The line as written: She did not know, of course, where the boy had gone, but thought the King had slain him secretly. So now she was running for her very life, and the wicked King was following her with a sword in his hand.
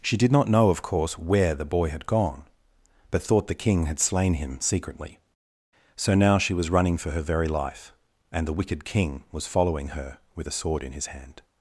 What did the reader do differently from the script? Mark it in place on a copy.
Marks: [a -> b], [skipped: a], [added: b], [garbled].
She did not know, of course, where the boy had gone, but thought the King had slain him secretly. So now she was running for her very life, and the wicked King was following her with a sword in his hand.